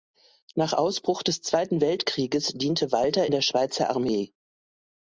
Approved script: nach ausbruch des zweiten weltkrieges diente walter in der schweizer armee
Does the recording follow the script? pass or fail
fail